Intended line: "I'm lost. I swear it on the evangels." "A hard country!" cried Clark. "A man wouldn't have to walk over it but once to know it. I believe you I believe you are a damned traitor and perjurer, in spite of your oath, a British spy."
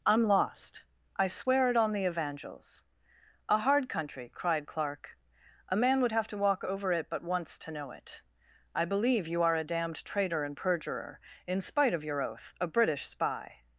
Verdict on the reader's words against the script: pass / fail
fail